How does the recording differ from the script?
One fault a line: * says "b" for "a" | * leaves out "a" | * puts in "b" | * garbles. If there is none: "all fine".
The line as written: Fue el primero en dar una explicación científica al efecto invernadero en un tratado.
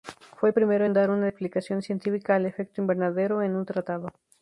all fine